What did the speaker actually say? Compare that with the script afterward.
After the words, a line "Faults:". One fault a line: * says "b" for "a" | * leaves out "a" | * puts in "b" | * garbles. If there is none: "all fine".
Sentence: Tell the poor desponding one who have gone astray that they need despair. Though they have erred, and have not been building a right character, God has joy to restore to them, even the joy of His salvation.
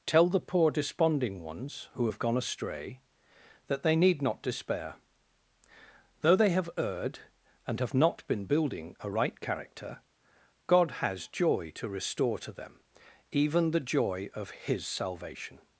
Tell the poor desponding ones who have gone astray that they need not despair. Though they have erred, and have not been building a right character, God has joy to restore to them, even the joy of His salvation.
Faults:
* says "ones" for "one"
* puts in "not"